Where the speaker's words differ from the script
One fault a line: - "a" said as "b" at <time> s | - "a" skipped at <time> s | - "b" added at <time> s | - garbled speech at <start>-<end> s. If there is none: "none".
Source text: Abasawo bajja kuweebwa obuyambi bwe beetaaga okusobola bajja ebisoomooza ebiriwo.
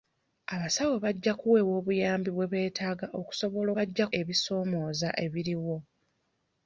none